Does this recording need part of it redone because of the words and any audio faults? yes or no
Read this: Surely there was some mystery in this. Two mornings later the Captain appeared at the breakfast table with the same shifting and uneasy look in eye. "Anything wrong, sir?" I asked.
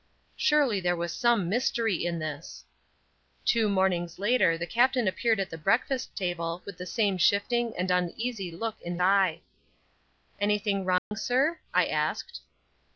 yes